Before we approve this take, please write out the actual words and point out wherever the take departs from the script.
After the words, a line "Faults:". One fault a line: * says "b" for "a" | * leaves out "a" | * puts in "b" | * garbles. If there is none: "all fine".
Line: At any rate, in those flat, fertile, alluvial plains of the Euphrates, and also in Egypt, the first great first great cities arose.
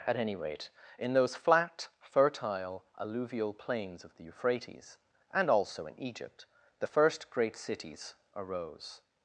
At any rate, in those flat, fertile, alluvial plains of the Euphrates, and also in Egypt, the first great cities arose.
Faults:
* leaves out "first great"